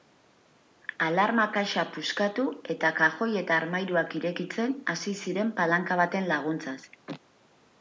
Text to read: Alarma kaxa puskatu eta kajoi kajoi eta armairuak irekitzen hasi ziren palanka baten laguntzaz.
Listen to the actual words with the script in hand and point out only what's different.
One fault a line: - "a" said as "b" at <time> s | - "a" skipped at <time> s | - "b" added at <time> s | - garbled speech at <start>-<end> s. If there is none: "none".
- "kajoi" skipped at 3.3 s